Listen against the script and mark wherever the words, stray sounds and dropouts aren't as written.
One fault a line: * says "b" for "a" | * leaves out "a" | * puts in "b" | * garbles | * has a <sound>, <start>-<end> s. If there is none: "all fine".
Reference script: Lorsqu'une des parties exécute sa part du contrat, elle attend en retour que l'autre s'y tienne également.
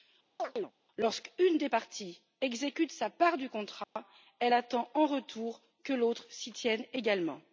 * has a chirp, 0.4-0.7 s
* has a dropout, 3.8-4.0 s